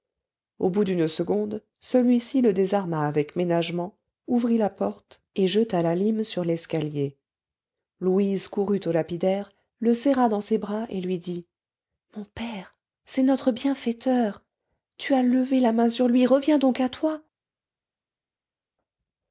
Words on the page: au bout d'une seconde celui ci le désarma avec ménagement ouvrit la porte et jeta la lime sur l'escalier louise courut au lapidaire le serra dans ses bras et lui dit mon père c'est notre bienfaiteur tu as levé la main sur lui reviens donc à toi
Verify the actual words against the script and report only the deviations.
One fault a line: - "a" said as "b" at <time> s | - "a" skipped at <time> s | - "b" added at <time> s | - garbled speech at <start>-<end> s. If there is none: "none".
none